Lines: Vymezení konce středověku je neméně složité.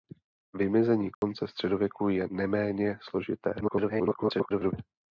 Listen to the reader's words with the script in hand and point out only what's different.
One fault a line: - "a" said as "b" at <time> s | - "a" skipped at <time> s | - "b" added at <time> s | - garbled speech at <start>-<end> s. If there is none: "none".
- garbled speech at 3.6-4.7 s